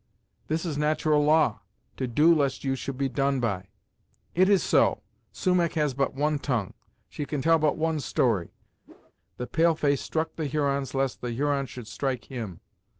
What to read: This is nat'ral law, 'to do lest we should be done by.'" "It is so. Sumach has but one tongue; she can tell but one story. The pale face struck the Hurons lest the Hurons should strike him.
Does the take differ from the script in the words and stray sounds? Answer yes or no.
yes